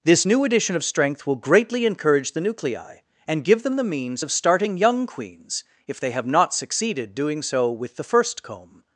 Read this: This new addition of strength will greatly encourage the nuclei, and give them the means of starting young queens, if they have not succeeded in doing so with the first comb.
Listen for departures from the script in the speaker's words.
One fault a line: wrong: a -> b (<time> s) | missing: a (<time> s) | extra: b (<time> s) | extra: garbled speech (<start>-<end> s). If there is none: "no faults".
missing: in (7.1 s)